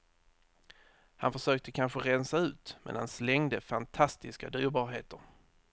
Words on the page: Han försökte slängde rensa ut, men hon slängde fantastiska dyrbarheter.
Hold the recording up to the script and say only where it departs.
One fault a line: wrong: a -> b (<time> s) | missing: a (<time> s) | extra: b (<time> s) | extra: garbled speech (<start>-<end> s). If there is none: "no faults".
wrong: slängde -> kanske (1.7 s)
wrong: hon -> han (3.0 s)